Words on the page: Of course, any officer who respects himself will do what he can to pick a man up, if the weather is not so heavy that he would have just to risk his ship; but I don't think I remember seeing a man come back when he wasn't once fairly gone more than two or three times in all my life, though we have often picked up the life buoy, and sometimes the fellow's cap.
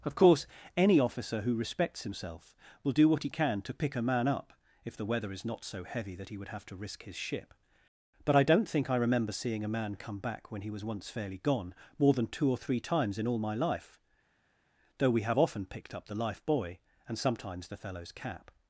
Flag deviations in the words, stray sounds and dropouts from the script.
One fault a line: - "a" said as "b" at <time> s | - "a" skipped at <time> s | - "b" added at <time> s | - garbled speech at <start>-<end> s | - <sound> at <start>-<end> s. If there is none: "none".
- "just" skipped at 6.6 s
- "wasn't" said as "was" at 10.7 s